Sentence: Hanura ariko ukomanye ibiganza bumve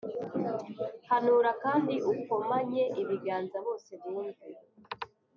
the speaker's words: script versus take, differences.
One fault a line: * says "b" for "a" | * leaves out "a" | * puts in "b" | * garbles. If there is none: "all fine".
* says "kandi" for "ariko"
* puts in "bose"